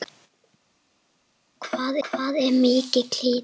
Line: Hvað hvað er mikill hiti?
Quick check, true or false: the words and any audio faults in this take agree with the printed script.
true